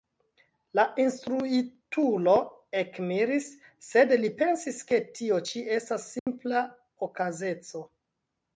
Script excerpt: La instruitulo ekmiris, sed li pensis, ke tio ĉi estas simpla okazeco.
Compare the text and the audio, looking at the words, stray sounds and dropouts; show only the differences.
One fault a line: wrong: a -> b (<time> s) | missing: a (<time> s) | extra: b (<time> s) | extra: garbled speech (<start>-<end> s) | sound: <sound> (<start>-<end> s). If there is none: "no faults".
sound: dropout (6.2-6.3 s)